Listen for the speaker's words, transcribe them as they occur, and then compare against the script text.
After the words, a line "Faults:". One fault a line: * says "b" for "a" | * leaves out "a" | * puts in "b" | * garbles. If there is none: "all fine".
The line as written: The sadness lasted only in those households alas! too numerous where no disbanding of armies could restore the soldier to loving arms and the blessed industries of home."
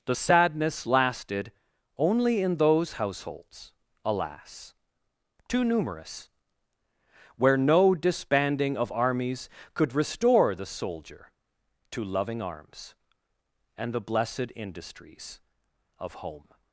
The sadness lasted only in those households alas! too numerous where no disbanding of armies could restore the soldier to loving arms and the blessed industries of home."
Faults:
all fine